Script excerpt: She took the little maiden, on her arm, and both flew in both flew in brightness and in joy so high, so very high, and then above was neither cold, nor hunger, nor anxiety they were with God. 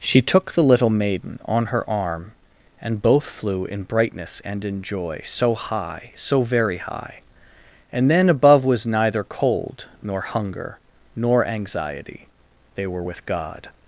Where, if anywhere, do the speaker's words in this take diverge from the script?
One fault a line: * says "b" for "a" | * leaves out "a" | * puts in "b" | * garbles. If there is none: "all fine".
* leaves out "both flew in"